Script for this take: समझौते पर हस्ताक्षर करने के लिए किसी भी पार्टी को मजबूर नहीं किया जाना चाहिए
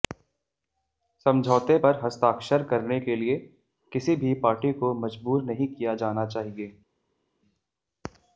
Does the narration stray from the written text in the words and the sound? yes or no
no